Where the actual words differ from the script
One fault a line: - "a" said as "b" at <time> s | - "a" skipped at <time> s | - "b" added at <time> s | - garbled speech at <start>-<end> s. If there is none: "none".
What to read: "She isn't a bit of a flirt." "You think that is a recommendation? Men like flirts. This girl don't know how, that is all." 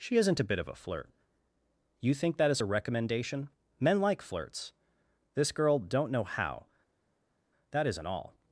- "is" said as "isn't" at 7.9 s